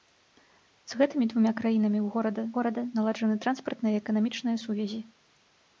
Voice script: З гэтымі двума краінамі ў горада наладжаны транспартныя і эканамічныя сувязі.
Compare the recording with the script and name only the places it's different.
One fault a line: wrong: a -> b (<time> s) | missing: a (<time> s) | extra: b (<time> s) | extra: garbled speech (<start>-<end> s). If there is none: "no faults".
extra: горада (2.6 s)